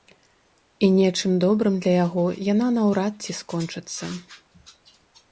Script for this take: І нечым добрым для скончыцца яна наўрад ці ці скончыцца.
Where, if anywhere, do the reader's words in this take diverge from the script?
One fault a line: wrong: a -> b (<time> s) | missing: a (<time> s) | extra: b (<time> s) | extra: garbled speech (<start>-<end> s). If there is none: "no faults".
wrong: скончыцца -> яго (2.0 s)
missing: ці (3.4 s)